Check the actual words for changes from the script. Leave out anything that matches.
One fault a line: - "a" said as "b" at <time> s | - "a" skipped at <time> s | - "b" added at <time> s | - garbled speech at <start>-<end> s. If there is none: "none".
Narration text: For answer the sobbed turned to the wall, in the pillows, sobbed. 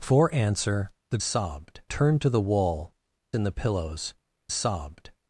none